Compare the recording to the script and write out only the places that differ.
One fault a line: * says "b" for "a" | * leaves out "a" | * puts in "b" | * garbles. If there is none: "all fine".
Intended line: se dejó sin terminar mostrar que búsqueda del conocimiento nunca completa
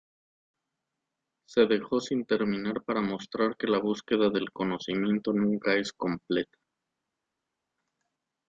* puts in "para"
* puts in "la"
* puts in "es"